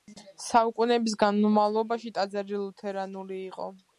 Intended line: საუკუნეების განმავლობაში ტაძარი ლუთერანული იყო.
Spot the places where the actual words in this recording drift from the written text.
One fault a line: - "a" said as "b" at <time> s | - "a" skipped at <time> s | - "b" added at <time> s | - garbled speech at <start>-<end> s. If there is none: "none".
none